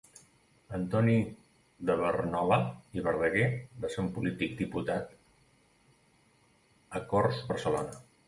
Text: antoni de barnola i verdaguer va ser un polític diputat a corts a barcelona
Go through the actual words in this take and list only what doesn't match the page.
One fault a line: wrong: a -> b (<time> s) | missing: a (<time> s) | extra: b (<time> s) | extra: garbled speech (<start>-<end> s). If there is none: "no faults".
no faults